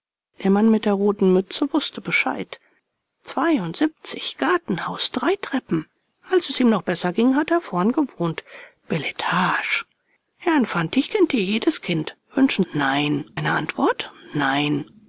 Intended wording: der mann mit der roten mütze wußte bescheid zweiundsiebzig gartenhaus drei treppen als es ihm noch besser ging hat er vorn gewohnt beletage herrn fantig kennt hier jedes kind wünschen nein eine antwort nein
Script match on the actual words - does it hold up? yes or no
yes